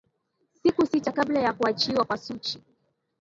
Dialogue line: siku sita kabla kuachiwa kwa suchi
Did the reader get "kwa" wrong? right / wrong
right